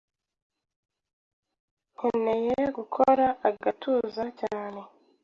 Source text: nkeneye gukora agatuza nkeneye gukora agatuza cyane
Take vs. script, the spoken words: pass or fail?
fail